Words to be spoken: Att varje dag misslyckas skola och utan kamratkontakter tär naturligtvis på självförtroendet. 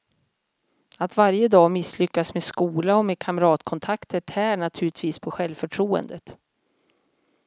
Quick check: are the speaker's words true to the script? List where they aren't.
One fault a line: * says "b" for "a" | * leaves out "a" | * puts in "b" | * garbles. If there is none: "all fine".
* puts in "med"
* says "med" for "utan"